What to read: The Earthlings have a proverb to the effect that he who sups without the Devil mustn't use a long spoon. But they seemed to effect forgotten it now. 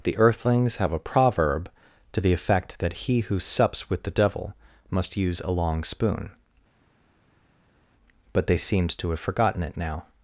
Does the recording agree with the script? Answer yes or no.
no